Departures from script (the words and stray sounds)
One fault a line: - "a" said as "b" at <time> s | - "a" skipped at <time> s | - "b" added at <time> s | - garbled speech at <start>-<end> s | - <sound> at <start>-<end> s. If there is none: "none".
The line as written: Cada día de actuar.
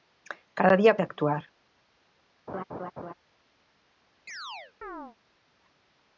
- laugh at 2.5-3.1 s
- chirp at 4.3-5.2 s